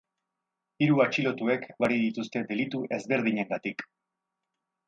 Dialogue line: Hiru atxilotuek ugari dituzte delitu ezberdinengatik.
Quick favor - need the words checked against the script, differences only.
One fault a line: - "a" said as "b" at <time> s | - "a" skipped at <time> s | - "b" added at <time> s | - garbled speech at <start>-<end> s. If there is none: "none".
none